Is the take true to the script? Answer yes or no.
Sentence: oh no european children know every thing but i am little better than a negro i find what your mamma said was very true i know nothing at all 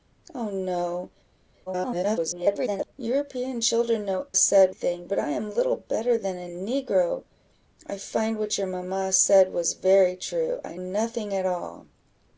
no